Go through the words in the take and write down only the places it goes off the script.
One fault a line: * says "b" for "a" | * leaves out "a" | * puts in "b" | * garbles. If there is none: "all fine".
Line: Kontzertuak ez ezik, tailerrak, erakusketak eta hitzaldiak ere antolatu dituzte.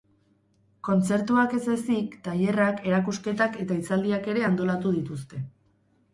all fine